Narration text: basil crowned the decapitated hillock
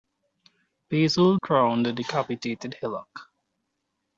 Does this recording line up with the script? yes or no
yes